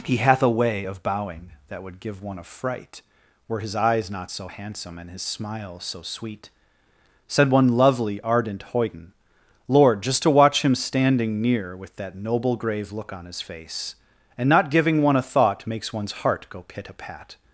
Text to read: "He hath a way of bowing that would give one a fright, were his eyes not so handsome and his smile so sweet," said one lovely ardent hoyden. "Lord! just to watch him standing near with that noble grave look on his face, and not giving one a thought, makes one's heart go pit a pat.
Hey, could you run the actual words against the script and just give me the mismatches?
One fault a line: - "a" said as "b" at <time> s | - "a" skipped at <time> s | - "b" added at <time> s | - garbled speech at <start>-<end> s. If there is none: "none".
none